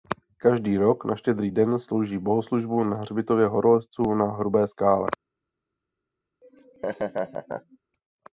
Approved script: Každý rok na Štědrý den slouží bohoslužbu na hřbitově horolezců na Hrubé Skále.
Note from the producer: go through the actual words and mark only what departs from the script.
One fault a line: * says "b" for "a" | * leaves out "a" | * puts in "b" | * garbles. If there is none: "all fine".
all fine